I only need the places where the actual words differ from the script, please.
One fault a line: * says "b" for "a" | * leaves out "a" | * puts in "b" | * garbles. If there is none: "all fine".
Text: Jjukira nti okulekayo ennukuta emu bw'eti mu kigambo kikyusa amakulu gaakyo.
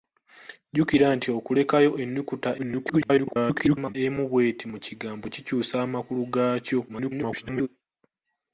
* garbles
* garbles